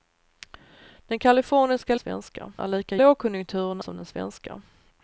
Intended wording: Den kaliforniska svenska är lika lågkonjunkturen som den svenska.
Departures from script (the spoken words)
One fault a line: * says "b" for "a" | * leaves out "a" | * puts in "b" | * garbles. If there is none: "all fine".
all fine